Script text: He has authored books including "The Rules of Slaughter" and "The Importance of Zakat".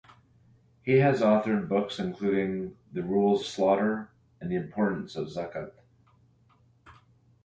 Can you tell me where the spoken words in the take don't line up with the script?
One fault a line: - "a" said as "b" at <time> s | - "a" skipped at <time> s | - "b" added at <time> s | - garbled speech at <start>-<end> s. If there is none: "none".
- "of" skipped at 3.5 s